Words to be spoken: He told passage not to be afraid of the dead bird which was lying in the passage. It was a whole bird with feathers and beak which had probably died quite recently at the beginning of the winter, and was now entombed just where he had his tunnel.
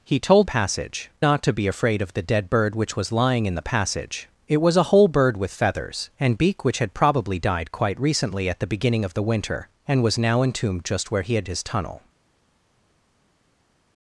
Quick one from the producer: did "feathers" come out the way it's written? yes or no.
yes